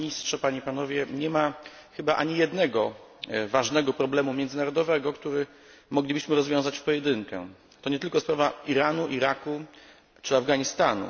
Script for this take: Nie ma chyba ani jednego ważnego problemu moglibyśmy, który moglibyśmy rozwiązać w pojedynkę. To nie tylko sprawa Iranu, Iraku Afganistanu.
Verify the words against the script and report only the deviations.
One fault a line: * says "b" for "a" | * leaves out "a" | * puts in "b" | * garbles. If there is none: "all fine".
* says "międzynarodowego" for "moglibyśmy"
* puts in "czy"